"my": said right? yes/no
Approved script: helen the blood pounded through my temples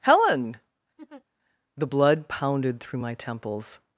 yes